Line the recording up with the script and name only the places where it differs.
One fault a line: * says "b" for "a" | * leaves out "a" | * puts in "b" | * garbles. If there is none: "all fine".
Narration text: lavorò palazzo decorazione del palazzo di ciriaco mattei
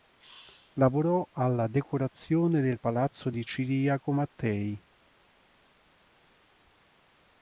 * says "alla" for "palazzo"